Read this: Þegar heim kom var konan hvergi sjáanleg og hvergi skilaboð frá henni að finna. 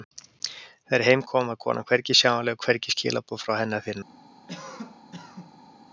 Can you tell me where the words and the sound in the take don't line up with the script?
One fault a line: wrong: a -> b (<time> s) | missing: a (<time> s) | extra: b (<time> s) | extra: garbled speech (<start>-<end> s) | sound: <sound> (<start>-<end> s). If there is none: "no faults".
sound: cough (4.5-5.8 s)